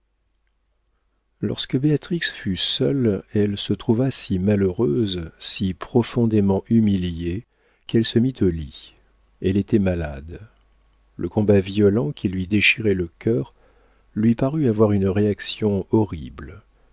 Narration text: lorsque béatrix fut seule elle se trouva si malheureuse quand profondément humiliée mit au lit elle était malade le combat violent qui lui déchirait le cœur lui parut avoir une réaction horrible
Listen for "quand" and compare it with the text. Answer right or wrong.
wrong